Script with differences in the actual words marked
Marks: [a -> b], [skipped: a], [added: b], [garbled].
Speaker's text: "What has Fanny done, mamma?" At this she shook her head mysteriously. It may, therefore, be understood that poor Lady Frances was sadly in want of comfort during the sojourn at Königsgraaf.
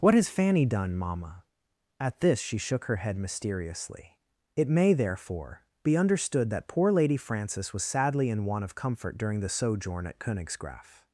"What has Fanny done, mamma?" At this she shook her head mysteriously. It may, therefore, be understood that poor Lady Frances was sadly in want of comfort during the sojourn at Königsgraaf.